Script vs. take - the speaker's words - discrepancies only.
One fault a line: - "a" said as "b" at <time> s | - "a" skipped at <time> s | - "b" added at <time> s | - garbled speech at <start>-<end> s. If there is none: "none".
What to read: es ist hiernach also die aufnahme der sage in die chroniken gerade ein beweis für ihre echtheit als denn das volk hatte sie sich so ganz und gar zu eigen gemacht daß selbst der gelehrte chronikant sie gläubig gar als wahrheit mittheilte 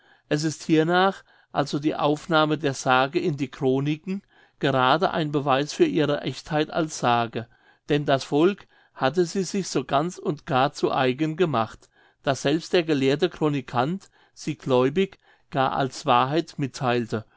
- "sage" added at 7.0 s